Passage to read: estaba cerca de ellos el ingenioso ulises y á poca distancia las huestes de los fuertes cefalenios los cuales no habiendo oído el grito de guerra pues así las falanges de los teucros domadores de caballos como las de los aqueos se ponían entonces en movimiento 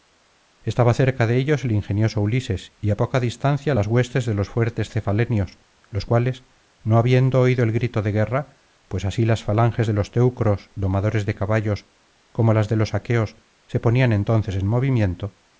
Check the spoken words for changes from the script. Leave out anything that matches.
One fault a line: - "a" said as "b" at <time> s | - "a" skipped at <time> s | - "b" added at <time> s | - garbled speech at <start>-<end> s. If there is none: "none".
none